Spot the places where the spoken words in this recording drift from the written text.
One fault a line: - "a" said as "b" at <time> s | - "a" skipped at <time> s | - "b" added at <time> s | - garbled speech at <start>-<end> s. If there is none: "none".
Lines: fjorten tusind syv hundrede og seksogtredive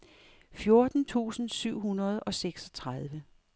none